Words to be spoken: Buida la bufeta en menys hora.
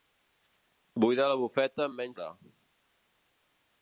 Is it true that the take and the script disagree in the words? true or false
false